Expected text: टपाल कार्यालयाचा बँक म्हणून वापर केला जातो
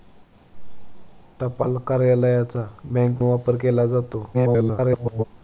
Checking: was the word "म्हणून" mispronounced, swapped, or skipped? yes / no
yes